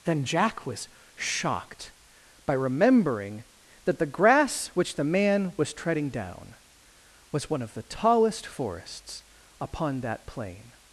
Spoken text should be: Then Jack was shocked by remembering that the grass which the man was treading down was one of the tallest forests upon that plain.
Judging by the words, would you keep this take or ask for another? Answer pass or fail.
pass